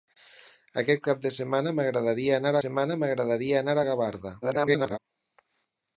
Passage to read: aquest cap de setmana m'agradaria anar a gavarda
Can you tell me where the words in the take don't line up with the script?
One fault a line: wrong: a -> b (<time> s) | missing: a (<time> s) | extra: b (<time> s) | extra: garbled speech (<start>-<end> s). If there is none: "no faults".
extra: setmana m'agradaria anar (2.6 s)
extra: garbled speech (4.4-5.0 s)